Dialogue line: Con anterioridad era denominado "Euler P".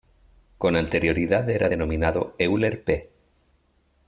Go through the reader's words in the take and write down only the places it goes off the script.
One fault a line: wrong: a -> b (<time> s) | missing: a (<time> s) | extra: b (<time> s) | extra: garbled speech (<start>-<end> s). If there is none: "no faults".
no faults